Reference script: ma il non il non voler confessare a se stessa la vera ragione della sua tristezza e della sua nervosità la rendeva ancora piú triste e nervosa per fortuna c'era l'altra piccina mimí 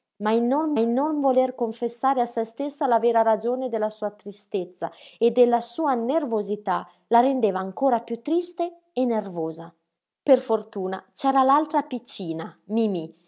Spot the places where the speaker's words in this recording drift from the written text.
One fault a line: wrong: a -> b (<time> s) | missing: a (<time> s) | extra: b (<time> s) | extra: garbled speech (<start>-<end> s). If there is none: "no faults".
no faults